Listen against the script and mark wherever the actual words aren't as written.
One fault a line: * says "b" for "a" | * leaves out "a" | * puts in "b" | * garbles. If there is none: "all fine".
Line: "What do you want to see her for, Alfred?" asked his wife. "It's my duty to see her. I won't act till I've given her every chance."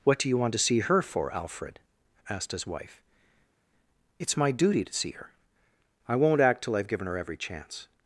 all fine